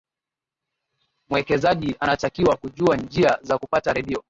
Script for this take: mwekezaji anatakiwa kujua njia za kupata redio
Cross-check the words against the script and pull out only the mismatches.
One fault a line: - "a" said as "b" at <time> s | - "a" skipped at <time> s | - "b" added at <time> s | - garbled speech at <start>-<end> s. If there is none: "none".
none